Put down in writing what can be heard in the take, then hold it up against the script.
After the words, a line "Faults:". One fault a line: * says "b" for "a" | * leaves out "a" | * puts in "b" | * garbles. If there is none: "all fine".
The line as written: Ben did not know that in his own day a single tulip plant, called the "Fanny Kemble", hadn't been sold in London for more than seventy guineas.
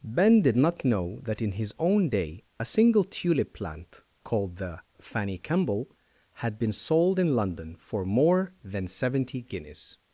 Ben did not know that in his own day a single tulip plant, called the "Fanny Kemble", had been sold in London for more than seventy guineas.
Faults:
* says "had" for "hadn't"